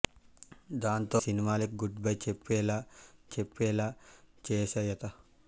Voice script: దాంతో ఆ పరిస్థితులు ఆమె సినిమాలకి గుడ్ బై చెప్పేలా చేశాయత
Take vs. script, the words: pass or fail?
fail